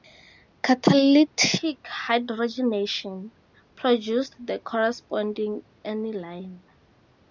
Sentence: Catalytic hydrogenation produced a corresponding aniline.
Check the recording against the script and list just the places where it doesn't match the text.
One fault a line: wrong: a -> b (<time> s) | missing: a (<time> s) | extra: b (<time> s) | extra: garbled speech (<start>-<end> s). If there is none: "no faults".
wrong: a -> the (4.4 s)